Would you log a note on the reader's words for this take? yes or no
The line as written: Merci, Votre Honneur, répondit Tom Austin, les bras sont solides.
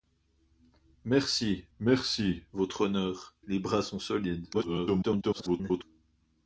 yes